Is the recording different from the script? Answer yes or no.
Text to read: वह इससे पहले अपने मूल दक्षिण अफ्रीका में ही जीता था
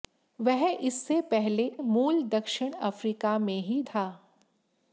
yes